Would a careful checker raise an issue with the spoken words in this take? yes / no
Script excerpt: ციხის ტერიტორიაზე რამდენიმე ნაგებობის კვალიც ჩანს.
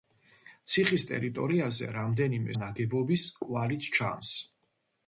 no